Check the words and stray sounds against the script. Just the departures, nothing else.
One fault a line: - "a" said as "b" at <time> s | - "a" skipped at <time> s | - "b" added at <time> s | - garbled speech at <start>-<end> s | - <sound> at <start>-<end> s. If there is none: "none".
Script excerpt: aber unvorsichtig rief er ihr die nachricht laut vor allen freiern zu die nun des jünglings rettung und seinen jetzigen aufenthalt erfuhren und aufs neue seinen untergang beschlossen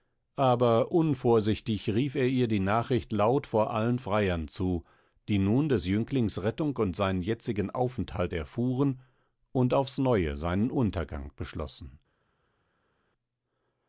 none